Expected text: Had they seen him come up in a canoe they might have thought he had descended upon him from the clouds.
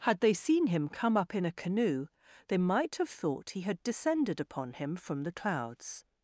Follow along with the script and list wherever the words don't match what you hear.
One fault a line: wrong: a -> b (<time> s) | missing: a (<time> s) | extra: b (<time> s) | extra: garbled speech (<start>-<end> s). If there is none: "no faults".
no faults